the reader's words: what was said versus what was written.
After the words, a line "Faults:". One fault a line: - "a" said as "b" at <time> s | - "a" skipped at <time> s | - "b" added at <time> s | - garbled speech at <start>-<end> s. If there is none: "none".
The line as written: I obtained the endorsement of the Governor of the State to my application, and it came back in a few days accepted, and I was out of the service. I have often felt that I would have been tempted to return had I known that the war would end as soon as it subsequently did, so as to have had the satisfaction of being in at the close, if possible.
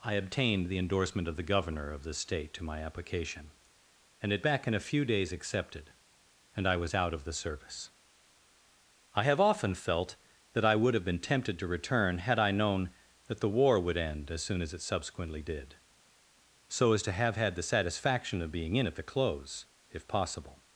I obtained the endorsement of the Governor of the State to my application, and it back in a few days accepted, and I was out of the service. I have often felt that I would have been tempted to return had I known that the war would end as soon as it subsequently did, so as to have had the satisfaction of being in at the close, if possible.
Faults:
- "came" skipped at 4.4 s